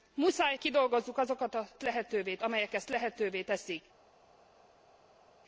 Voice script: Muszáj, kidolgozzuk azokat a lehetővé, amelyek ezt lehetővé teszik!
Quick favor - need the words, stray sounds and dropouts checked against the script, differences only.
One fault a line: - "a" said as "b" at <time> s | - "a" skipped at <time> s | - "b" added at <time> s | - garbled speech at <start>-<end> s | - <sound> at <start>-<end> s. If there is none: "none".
none